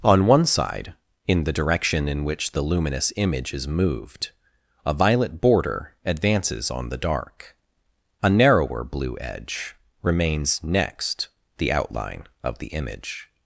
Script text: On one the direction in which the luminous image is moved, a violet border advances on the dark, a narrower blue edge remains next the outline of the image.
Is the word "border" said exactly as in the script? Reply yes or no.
yes